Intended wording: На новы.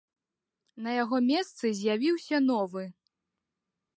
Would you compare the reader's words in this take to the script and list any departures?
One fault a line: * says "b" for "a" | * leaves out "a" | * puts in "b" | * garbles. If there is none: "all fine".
* puts in "яго месцы з'явіўся"